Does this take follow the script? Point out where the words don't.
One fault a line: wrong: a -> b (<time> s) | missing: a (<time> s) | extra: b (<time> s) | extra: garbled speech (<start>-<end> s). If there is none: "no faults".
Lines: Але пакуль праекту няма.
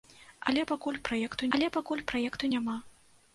extra: але пакуль праекту (1.6 s)